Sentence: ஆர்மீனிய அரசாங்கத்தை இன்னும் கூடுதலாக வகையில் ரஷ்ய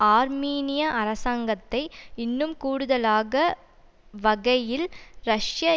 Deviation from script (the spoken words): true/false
false